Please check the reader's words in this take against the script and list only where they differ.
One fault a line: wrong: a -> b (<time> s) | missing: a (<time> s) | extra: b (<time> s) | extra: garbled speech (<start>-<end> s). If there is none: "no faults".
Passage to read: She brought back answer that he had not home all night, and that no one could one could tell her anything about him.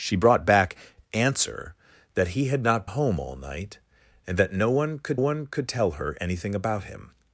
no faults